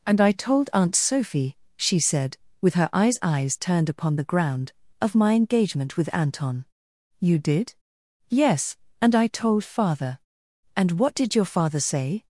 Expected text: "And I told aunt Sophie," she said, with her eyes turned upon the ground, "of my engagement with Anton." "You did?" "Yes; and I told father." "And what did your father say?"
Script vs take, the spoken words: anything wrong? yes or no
yes